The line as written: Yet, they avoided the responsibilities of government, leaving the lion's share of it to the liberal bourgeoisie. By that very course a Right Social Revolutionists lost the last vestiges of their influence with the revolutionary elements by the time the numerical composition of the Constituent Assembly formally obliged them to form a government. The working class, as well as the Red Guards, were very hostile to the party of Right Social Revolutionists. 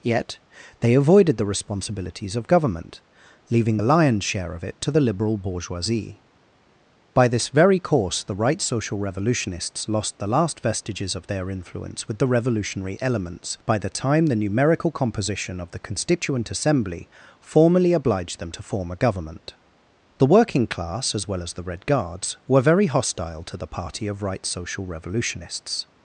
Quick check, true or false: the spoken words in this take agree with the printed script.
false